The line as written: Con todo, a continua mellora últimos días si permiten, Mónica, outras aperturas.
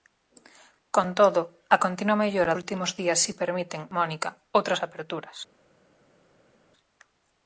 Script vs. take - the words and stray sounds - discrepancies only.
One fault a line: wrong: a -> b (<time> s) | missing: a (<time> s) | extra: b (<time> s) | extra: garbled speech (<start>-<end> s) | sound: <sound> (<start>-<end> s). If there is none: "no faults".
no faults